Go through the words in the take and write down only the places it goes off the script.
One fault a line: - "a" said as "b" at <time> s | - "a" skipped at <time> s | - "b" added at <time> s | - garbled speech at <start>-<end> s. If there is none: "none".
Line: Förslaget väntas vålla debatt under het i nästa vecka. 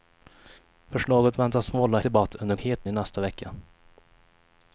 none